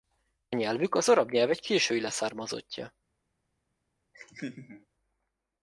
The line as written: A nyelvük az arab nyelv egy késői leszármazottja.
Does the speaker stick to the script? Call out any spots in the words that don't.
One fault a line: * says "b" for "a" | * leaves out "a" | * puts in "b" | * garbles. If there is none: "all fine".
all fine